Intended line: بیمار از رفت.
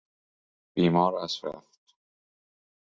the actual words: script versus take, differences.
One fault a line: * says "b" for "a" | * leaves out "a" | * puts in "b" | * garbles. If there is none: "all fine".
all fine